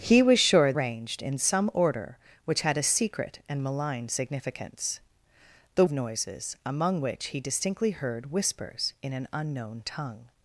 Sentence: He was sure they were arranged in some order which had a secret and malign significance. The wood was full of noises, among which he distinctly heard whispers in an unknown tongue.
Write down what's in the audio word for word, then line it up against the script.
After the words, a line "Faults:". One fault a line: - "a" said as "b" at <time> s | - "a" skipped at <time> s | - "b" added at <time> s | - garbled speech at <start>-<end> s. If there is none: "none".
He was sure arranged in some order which had a secret and malign significance. The of noises, among which he distinctly heard whispers in an unknown tongue.
Faults:
- "they were" skipped at 0.7 s
- "wood was full" skipped at 5.8 s